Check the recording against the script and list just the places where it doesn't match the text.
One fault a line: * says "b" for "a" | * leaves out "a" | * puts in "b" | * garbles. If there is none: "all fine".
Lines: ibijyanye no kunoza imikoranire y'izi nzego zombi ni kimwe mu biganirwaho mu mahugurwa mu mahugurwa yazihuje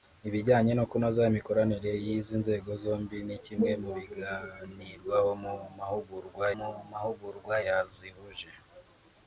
all fine